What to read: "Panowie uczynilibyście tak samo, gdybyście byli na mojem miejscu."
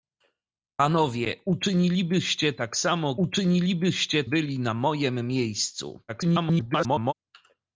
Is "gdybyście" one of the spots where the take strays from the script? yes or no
yes